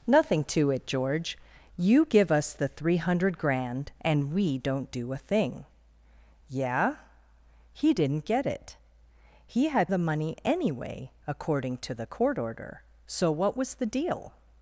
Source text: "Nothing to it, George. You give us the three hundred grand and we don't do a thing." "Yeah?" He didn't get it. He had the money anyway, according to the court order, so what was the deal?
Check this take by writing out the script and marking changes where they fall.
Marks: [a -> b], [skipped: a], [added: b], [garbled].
"Nothing to it, George. You give us the three hundred grand and we don't do a thing." "Yeah?" He didn't get it. He had the money anyway, according to the court order, so what was the deal?